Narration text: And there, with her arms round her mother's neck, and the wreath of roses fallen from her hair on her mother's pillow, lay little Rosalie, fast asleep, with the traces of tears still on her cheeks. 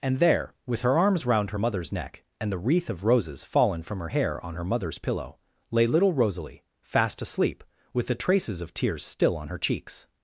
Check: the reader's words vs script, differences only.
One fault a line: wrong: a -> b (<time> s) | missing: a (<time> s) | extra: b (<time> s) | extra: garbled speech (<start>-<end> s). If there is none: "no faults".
no faults